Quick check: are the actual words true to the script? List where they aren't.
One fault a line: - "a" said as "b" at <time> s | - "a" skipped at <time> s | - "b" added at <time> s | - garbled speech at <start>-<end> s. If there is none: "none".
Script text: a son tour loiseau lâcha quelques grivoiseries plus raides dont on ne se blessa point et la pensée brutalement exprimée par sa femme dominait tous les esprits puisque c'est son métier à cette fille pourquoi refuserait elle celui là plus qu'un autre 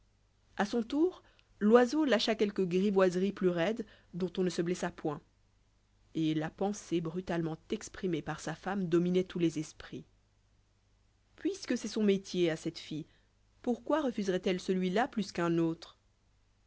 none